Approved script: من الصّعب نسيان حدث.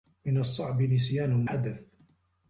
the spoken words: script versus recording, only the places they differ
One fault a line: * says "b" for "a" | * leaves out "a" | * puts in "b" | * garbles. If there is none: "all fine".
all fine